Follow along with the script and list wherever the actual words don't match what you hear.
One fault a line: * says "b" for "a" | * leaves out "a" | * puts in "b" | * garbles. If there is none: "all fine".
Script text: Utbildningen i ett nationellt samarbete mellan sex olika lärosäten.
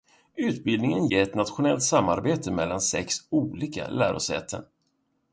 all fine